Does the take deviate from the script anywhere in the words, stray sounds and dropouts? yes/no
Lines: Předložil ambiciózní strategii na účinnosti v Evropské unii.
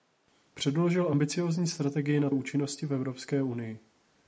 no